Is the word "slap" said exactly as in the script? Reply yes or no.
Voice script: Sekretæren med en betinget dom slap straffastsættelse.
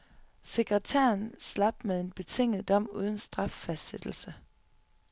no